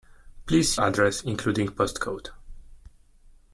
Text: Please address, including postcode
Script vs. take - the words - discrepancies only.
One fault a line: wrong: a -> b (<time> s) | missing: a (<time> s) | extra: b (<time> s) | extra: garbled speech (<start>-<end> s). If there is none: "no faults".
no faults